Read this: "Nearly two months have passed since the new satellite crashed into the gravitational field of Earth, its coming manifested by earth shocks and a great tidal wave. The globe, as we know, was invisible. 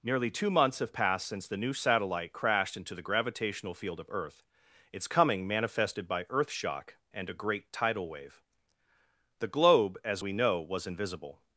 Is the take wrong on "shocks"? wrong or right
wrong